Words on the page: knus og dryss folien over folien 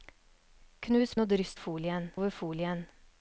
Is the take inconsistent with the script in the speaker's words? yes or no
no